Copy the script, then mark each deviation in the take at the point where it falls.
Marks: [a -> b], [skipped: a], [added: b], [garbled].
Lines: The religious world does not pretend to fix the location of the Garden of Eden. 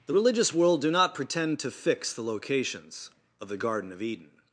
The religious world [does -> do] not pretend to fix the [location -> locations] of the Garden of Eden.